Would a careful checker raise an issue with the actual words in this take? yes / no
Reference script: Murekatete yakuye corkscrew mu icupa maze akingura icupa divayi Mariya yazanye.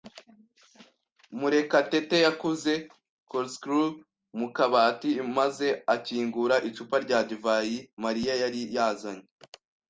yes